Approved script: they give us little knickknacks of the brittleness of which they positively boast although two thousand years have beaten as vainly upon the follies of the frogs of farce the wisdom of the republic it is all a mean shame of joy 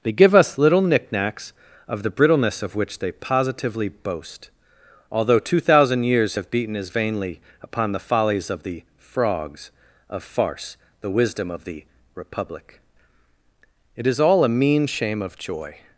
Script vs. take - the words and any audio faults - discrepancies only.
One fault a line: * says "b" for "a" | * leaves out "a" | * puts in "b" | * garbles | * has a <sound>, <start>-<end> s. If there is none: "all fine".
all fine